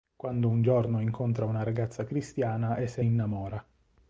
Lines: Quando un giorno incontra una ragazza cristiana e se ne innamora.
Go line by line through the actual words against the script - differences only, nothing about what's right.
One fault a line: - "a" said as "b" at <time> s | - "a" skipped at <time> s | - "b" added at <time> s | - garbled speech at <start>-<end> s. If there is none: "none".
- "ne" skipped at 3.0 s